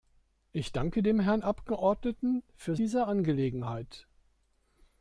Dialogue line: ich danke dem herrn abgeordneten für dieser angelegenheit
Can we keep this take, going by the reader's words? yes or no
yes